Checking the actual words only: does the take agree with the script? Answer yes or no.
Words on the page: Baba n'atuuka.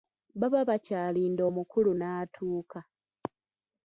no